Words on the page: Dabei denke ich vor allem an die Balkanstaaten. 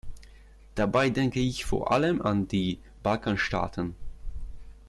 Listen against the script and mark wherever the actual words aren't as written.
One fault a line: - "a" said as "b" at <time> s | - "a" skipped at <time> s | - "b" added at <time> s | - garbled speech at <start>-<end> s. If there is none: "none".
none